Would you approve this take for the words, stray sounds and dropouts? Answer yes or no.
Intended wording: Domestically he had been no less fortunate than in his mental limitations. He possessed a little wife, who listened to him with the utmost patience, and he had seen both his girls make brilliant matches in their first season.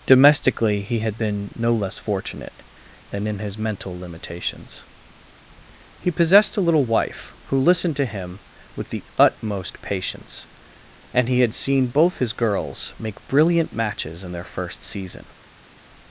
yes